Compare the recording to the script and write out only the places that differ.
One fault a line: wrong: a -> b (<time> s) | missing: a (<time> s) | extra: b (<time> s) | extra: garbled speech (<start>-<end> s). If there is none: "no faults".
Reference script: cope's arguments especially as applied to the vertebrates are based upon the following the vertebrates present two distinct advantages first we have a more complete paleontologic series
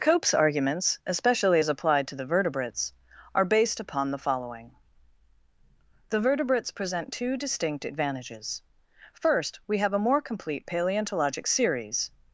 no faults